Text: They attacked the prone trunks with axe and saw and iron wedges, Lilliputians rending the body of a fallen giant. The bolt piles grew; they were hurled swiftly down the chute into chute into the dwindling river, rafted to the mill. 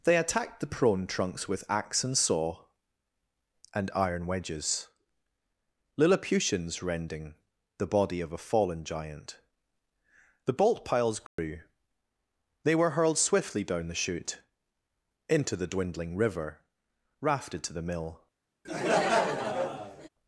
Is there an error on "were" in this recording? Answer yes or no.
no